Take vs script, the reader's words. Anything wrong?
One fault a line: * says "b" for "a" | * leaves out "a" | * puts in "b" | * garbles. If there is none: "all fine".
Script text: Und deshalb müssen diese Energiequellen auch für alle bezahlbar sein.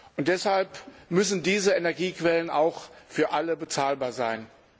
all fine